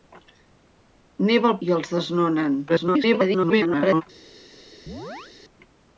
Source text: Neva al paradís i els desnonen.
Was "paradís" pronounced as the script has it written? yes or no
no